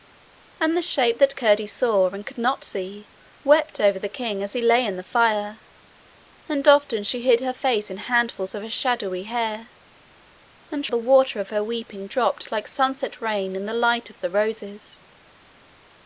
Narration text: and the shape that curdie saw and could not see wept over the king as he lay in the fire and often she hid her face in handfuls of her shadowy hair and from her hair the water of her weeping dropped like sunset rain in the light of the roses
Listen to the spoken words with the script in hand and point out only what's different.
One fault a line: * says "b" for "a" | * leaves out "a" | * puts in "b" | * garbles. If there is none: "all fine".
* leaves out "from her hair"